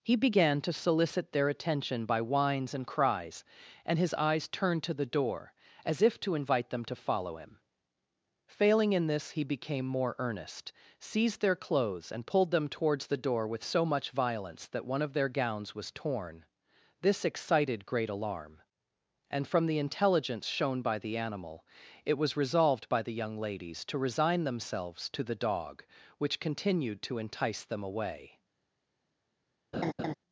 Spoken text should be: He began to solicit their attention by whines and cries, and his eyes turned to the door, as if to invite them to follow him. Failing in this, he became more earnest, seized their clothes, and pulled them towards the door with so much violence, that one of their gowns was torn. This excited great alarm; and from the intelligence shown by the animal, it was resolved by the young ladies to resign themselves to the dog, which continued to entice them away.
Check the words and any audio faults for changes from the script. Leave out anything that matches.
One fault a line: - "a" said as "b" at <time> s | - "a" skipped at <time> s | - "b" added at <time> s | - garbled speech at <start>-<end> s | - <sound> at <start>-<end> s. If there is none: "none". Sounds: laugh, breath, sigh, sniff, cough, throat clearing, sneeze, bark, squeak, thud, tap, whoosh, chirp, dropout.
- laugh at 29.7-30.1 s